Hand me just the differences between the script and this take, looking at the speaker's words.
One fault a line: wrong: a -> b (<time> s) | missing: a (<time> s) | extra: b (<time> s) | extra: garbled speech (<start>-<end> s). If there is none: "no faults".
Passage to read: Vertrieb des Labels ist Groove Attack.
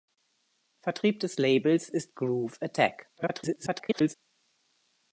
extra: garbled speech (3.2-4.1 s)